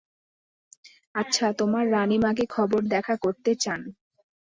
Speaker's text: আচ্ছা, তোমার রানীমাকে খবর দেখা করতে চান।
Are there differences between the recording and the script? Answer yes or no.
no